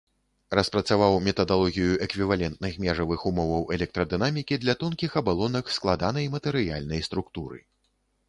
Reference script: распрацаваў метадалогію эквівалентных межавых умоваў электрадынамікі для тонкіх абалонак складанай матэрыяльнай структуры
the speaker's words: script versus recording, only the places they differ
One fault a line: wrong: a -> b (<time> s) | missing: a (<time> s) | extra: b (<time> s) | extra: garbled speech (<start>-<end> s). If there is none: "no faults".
no faults